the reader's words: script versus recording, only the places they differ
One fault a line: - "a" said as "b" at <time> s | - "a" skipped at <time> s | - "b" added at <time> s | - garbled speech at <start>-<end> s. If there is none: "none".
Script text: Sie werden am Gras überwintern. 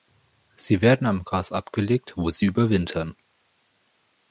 - "abgelegt wo sie" added at 1.5 s